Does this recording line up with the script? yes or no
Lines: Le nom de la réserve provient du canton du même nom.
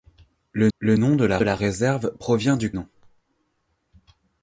no